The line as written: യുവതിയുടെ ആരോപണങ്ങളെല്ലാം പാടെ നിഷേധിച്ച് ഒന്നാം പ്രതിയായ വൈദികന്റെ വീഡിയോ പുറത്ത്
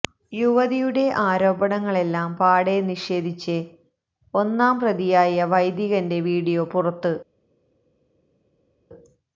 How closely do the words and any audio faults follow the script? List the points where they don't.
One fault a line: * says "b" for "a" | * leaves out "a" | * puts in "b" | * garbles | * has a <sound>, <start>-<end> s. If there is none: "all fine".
all fine